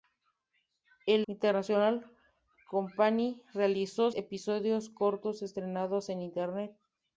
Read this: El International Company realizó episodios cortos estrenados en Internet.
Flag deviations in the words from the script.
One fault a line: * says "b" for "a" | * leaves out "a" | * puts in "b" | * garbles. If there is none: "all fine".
all fine